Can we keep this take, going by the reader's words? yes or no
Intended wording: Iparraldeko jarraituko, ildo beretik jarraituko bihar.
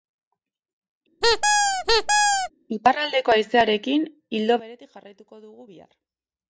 no